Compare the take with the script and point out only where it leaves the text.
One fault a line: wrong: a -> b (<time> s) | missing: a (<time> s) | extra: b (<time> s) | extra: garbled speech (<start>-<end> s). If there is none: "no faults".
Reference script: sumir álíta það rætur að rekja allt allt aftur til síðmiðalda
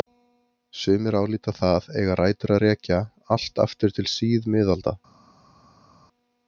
extra: eiga (2.0 s)
missing: allt (3.6 s)